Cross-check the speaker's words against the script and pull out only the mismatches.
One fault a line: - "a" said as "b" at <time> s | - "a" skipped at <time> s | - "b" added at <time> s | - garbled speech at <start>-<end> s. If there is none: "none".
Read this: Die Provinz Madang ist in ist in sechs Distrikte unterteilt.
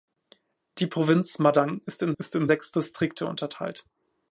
none